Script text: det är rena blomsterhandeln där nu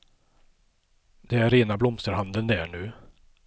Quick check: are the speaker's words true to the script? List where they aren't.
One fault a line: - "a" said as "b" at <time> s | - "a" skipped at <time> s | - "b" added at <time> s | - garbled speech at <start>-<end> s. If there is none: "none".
none